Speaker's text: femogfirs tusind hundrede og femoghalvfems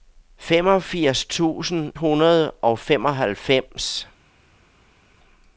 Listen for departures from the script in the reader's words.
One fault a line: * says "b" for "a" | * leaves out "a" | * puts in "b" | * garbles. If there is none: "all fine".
all fine